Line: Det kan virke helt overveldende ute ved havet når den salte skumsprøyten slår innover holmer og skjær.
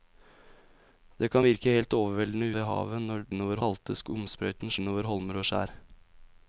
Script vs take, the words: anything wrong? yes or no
yes